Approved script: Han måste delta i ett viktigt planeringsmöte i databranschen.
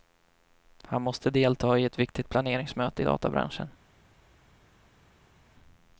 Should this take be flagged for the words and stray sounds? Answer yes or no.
no